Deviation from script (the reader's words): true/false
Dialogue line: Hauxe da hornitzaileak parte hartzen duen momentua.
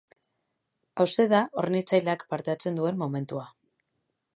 false